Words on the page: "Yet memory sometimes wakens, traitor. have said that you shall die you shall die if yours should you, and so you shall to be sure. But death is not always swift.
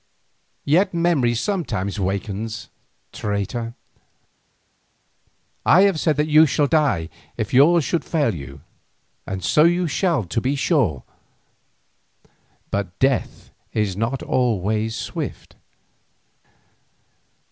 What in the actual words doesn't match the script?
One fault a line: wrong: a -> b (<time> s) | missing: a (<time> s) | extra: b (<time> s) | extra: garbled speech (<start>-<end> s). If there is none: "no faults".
extra: I (5.6 s)
missing: you shall die (7.1 s)
extra: fail (8.0 s)